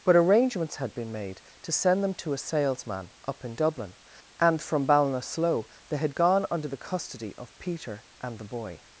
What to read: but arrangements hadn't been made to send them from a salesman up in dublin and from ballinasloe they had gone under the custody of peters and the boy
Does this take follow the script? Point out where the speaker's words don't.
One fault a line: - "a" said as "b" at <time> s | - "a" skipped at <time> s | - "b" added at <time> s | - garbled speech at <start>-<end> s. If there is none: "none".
- "hadn't" said as "had" at 0.8 s
- "from" said as "to" at 2.1 s
- "peters" said as "peter" at 7.6 s